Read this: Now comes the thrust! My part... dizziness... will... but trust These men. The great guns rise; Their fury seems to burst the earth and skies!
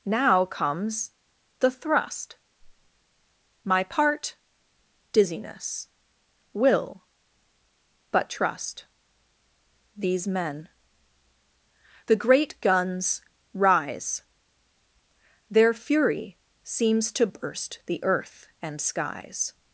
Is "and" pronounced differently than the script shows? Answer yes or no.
no